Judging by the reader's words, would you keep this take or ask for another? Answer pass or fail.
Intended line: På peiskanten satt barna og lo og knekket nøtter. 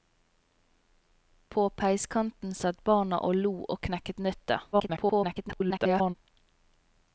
fail